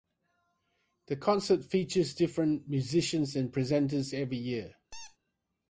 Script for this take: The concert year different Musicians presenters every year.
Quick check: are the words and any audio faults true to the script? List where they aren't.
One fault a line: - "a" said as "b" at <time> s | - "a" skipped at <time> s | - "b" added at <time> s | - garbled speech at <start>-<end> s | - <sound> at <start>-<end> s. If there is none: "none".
- "year" said as "features" at 1.6 s
- "and" added at 3.4 s
- squeak at 4.9-5.2 s